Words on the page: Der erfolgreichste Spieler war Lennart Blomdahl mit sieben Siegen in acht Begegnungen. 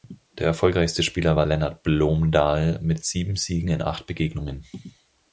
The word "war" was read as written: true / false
true